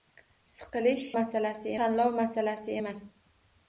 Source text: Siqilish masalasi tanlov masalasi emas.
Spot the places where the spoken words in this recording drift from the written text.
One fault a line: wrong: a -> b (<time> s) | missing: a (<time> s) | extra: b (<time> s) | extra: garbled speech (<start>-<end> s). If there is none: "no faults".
no faults